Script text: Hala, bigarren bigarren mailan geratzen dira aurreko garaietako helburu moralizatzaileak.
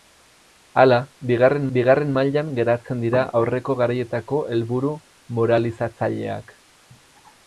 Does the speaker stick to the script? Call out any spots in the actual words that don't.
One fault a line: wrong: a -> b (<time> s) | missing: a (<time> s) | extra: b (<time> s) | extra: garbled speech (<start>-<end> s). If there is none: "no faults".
no faults